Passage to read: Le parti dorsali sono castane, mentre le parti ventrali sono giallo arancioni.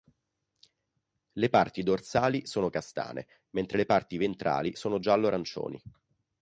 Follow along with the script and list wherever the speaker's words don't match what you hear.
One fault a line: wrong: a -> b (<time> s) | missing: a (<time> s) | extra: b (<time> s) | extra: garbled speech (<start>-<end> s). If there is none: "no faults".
no faults